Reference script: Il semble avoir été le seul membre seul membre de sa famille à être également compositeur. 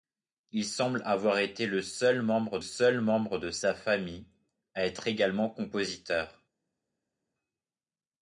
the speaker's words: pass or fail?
pass